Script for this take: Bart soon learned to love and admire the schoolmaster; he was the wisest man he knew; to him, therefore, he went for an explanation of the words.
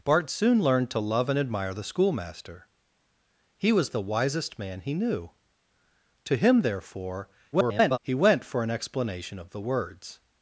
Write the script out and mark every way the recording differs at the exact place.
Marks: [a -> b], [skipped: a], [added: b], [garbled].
Bart soon learned to love and admire the schoolmaster; he was the wisest man he knew; to him, therefore, [garbled] he went for an explanation of the words.